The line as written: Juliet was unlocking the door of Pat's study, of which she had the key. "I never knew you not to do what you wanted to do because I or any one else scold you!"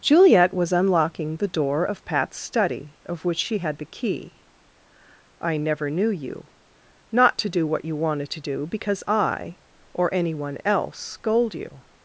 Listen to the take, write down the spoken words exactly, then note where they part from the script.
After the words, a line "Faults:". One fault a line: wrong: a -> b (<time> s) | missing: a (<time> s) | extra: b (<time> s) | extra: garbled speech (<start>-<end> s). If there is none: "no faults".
Juliet was unlocking the door of Pat's study, of which she had the key. "I never knew you not to do what you wanted to do because I or any one else scold you!"
Faults:
no faults